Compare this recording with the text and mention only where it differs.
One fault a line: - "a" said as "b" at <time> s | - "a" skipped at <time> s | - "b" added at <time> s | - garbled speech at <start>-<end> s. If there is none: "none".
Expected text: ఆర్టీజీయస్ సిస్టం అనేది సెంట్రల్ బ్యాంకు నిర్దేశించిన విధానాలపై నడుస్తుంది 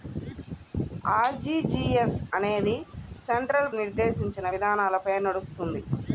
- "సిస్టం" skipped at 2.2 s
- "బ్యాంకు" skipped at 3.7 s